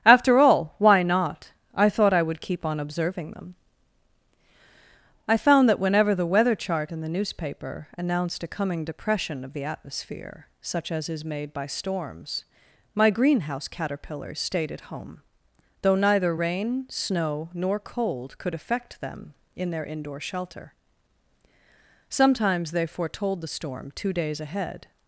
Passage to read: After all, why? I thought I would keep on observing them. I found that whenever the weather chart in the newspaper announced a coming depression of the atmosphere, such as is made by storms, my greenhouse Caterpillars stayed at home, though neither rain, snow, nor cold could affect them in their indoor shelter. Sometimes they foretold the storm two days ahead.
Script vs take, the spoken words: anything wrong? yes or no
yes